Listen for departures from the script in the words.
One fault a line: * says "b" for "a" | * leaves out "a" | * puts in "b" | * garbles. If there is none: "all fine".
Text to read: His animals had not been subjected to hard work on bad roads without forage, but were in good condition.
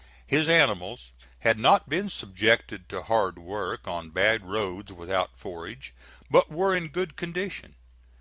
all fine